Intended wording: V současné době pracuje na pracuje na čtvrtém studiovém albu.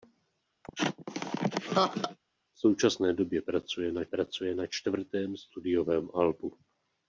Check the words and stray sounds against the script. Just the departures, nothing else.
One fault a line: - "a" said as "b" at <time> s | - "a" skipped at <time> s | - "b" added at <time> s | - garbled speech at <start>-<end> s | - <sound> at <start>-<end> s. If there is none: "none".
- laugh at 0.6-2.2 s